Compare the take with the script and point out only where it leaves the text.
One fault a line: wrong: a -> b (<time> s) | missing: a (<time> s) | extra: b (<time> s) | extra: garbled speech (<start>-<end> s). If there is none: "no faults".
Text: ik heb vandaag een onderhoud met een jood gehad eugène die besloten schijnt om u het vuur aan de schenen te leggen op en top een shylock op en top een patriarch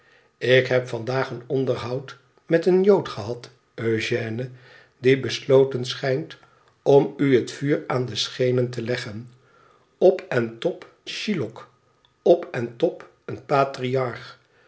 missing: een (10.9 s)